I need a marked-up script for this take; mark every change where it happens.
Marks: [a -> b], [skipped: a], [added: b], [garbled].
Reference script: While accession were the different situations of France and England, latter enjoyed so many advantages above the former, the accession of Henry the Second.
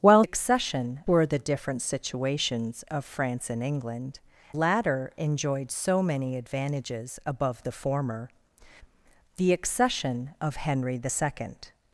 While accession were the different situations of France and England, latter enjoyed so many advantages above the former, the accession of Henry the Second.